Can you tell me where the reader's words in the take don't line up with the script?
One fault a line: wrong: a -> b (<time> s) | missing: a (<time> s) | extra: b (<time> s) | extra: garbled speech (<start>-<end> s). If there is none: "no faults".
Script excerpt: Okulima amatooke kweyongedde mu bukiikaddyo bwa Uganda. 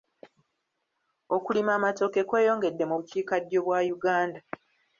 no faults